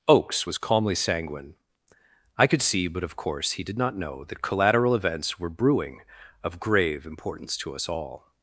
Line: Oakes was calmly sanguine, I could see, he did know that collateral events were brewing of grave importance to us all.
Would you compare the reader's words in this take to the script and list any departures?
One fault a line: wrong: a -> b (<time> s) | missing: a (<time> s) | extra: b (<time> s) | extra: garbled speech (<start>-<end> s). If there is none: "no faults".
extra: but of course (2.9 s)
extra: not (3.8 s)